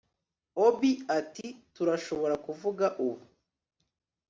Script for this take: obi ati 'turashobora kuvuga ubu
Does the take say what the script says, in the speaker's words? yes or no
yes